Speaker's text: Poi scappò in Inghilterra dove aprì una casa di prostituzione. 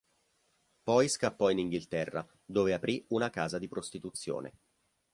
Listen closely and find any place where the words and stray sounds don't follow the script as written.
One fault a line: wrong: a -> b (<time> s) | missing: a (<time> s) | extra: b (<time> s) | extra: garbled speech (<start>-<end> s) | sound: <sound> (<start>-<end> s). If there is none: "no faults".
no faults